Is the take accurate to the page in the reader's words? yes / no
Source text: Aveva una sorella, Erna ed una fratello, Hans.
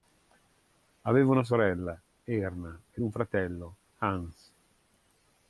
no